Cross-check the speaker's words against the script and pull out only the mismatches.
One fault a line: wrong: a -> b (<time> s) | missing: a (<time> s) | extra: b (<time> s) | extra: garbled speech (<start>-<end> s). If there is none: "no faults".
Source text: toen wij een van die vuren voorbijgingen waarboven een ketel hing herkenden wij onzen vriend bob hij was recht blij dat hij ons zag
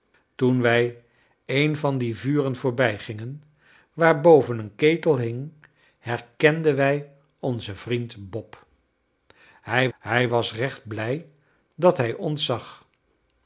extra: hij (10.0 s)